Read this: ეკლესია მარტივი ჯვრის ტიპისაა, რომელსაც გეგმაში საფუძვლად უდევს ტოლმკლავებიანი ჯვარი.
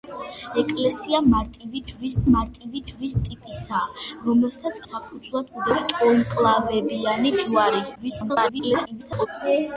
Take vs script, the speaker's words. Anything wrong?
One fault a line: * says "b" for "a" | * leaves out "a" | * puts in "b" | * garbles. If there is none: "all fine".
* puts in "მარტივი ჯვრის"
* leaves out "გეგმაში"
* garbles